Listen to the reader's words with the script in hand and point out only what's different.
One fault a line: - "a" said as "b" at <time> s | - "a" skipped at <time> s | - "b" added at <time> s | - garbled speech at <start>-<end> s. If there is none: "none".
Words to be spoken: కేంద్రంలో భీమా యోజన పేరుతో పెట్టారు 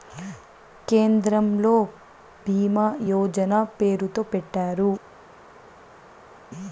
none